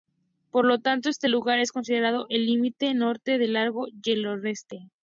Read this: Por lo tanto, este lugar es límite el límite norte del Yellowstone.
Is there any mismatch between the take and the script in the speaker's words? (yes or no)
yes